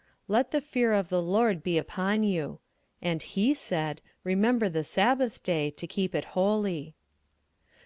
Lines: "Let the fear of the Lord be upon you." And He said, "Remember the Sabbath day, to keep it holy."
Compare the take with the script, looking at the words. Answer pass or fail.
pass